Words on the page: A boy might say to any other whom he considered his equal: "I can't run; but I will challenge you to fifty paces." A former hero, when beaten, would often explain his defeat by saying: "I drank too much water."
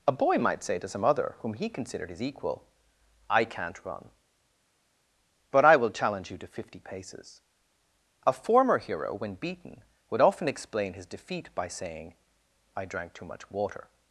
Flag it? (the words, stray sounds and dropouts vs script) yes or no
yes